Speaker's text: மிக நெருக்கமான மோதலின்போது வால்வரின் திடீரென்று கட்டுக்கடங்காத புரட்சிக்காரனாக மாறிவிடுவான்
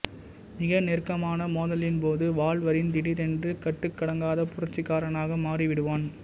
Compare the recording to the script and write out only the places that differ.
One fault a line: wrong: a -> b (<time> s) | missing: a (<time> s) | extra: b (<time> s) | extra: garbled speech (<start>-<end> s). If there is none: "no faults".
no faults